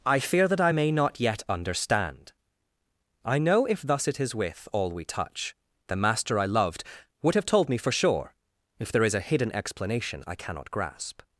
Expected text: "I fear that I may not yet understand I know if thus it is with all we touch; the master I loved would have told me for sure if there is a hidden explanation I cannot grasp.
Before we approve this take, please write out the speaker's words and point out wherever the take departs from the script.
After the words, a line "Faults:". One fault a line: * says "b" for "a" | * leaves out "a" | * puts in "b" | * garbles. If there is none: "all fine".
"I fear that I may not yet understand I know if thus it is with all we touch; the master I loved would have told me for sure if there is a hidden explanation I cannot grasp.
Faults:
all fine